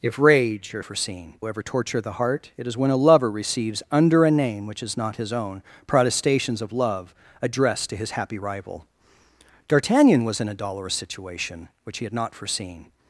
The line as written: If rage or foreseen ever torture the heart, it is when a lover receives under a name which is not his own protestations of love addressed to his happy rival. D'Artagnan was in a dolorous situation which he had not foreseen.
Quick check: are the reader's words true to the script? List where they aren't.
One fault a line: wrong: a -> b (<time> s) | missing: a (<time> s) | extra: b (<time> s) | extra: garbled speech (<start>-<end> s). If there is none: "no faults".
no faults